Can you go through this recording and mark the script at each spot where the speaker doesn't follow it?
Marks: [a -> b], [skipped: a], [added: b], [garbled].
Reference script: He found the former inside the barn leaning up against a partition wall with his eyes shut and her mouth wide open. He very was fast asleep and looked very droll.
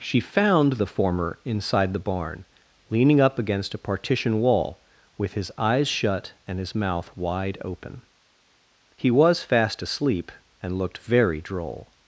[He -> She] found the former inside the barn leaning up against a partition wall with his eyes shut and [her -> his] mouth wide open. He [skipped: very] was fast asleep and looked very droll.